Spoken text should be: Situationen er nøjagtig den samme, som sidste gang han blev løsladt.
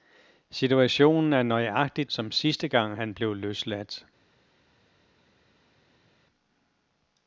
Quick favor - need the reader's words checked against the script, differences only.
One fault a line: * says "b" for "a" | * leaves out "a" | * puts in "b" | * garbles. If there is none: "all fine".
* leaves out "den samme"